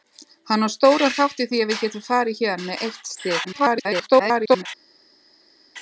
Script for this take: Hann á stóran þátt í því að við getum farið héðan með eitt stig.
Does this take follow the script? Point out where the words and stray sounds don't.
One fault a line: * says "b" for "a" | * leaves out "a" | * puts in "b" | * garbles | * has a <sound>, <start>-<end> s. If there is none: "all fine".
* garbles